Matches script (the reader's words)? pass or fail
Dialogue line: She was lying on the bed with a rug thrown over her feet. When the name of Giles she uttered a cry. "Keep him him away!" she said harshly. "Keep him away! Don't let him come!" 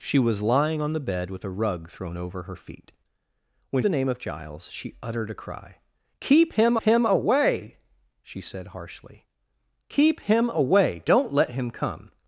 pass